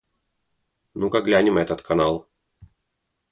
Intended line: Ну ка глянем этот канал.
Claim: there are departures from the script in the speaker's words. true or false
false